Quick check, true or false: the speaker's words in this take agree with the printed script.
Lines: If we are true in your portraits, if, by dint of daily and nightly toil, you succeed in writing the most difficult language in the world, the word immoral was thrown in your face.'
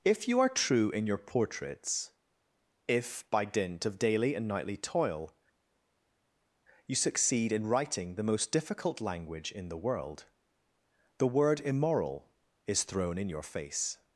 false